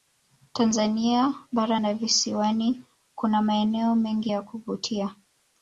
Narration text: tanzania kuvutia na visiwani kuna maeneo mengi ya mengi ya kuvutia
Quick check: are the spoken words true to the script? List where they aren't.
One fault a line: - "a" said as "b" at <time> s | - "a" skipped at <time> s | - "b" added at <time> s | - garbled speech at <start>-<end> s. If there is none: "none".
- "kuvutia" said as "bara" at 1.5 s
- "mengi ya" skipped at 4.4 s